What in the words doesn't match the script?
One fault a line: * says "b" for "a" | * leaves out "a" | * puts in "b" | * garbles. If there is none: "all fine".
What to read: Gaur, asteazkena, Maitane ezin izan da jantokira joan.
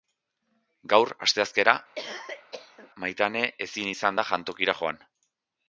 all fine